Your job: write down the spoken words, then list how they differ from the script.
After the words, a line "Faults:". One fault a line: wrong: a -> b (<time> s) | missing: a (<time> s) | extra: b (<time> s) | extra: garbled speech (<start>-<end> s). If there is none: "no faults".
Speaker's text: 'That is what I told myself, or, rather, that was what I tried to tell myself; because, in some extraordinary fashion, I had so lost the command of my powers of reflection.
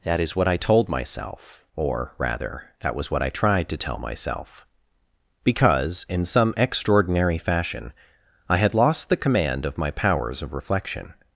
'That is what I told myself, or, rather, that was what I tried to tell myself; because, in some extraordinary fashion, I had lost the command of my powers of reflection.
Faults:
missing: so (8.7 s)